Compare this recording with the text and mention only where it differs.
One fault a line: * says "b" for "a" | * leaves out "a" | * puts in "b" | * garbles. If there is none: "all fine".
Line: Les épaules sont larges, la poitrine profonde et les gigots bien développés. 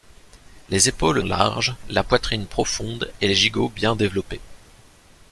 * leaves out "sont"